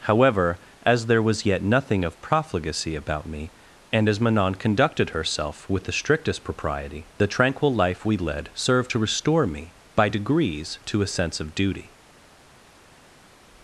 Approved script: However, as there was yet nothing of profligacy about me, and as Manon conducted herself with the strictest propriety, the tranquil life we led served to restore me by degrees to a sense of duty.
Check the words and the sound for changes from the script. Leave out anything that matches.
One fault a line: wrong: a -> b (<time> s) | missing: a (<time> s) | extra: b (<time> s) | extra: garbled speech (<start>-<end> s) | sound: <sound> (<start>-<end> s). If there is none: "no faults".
no faults